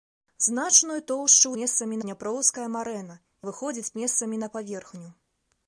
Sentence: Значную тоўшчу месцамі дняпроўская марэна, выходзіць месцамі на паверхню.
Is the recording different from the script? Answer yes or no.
no